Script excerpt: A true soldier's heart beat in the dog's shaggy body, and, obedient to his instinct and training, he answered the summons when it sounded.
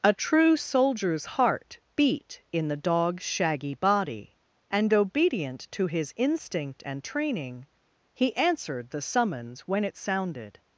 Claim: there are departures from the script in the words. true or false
false